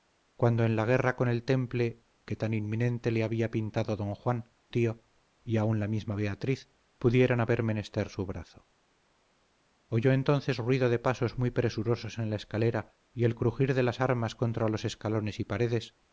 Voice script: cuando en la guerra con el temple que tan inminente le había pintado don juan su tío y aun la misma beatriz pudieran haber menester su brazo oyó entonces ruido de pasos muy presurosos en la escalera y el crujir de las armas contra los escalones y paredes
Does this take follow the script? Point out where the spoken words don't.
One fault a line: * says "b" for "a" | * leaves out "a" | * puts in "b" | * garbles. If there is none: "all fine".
* leaves out "su"